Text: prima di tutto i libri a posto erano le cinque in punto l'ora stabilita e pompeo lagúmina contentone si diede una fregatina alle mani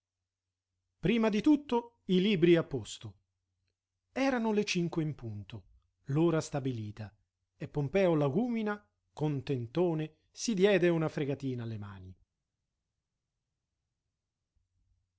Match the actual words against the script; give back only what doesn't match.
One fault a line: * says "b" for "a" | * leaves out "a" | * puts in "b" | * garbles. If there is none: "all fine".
all fine